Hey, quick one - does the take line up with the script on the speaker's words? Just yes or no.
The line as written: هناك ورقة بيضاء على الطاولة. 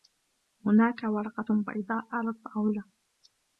yes